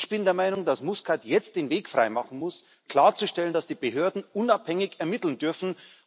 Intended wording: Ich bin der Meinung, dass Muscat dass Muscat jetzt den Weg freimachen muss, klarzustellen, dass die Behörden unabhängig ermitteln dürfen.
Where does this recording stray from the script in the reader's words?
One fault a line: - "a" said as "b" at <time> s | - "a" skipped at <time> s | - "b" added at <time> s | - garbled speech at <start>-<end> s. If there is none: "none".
- "dass Muscat" skipped at 1.2 s